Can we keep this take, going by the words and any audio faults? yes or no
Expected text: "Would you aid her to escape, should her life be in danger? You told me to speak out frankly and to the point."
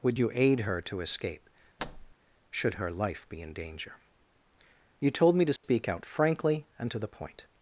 no